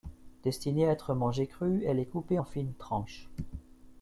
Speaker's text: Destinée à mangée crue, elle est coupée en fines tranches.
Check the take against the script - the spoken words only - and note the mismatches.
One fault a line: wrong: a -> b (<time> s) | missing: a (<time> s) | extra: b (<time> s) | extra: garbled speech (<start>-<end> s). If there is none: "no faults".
extra: être (0.9 s)